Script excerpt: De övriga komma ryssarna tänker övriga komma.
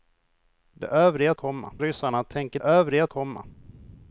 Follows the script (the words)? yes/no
yes